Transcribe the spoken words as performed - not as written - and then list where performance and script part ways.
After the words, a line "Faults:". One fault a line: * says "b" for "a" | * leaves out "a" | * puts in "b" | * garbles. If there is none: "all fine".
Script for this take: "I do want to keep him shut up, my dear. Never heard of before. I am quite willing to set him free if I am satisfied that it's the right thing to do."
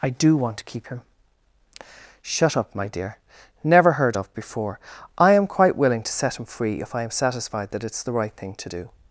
"I do want to keep him shut up, my dear. Never heard of before. I am quite willing to set him free if I am satisfied that it's the right thing to do."
Faults:
all fine